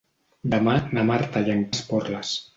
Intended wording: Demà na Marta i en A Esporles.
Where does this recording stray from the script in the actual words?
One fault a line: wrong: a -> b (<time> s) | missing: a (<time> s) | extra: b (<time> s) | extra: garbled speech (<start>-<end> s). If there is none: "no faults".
no faults